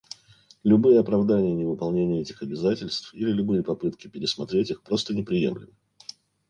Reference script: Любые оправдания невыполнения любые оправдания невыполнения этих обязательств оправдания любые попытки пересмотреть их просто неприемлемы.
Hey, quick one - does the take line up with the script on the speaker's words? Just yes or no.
no